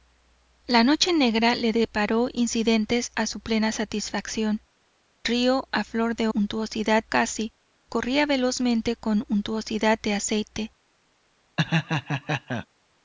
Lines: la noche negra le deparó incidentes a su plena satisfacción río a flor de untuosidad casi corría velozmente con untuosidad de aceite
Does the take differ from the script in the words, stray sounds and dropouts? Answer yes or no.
yes